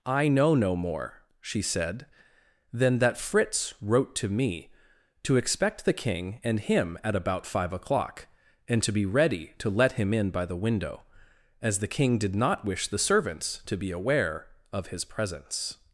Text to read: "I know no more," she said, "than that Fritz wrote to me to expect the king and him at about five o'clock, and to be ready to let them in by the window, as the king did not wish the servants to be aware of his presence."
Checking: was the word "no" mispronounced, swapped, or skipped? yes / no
no